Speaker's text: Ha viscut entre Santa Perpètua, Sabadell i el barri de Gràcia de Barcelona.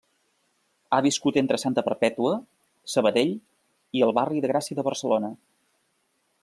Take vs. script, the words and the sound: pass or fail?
pass